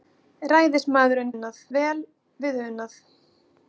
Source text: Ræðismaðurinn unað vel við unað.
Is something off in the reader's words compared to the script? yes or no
no